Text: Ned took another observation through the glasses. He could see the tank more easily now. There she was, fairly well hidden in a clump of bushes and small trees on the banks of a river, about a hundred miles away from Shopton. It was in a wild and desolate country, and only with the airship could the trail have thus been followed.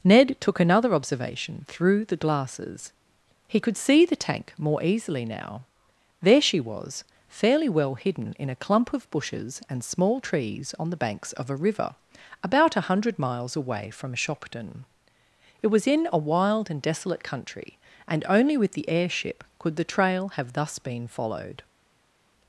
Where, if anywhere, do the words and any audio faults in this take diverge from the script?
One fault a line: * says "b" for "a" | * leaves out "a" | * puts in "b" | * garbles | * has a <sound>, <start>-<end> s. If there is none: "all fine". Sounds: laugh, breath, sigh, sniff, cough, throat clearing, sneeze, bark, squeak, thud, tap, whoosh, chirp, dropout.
all fine